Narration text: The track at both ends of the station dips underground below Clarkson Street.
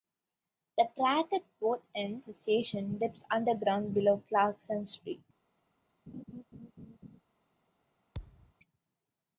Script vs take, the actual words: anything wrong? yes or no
yes